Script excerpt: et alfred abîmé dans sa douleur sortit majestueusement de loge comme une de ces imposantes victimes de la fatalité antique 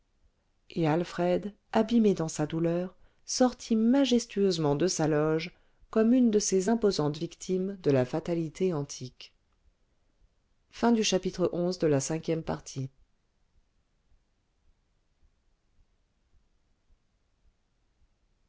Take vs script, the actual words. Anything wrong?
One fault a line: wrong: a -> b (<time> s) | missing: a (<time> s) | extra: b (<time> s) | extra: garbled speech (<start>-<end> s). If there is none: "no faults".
extra: sa (4.9 s)